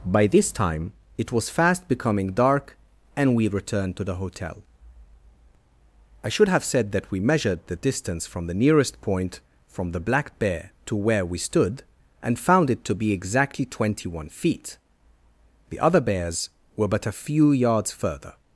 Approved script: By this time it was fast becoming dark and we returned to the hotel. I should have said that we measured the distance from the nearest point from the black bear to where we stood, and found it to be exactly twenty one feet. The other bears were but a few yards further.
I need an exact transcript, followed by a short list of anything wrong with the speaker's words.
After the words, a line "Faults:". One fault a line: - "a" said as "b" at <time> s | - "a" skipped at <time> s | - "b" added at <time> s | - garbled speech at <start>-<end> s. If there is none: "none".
By this time it was fast becoming dark and we returned to the hotel. I should have said that we measured the distance from the nearest point from the black bear to where we stood, and found it to be exactly twenty one feet. The other bears were but a few yards further.
Faults:
none